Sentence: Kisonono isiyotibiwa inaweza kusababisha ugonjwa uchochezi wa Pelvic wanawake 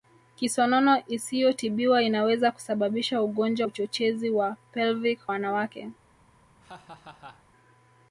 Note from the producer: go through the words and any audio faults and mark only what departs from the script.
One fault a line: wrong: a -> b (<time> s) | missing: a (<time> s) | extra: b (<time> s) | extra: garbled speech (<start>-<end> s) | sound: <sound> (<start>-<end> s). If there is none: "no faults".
sound: laugh (6.6-7.4 s)